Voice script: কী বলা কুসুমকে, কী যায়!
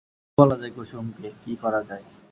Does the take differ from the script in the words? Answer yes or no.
yes